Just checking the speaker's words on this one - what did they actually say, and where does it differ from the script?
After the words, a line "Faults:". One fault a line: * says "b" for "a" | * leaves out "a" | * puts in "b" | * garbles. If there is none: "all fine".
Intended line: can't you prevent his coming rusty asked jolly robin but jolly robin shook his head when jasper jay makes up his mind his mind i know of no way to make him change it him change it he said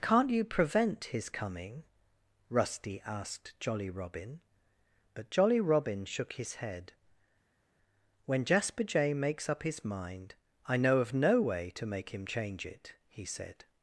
can't you prevent his coming rusty asked jolly robin but jolly robin shook his head when jasper jay makes up his mind i know of no way to make him change it he said
Faults:
* leaves out "his mind"
* leaves out "him change it"